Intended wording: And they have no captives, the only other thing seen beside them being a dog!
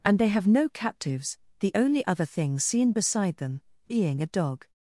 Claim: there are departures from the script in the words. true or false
false